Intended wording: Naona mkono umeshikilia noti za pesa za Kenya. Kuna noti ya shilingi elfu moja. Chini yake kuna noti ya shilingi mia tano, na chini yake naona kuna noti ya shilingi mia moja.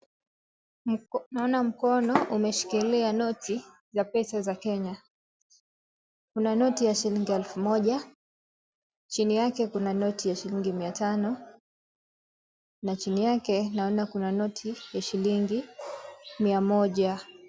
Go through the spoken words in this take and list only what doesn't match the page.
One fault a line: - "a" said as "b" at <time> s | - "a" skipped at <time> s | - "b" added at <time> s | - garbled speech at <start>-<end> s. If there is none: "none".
none